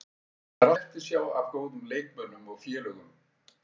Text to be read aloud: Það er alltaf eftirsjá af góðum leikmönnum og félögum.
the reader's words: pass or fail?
fail